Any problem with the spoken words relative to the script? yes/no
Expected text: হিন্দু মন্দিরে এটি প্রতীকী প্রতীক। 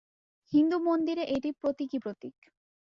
no